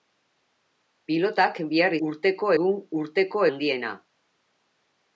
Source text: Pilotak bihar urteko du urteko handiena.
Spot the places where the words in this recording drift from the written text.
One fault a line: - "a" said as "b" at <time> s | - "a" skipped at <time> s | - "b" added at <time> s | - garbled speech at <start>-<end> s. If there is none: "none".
none